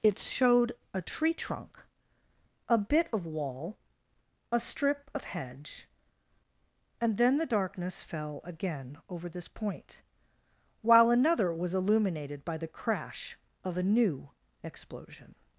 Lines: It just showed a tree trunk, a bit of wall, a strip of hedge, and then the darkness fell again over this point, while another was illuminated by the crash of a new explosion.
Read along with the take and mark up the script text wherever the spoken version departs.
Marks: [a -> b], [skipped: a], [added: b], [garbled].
It [skipped: just] showed a tree trunk, a bit of wall, a strip of hedge, and then the darkness fell again over this point, while another was illuminated by the crash of a new explosion.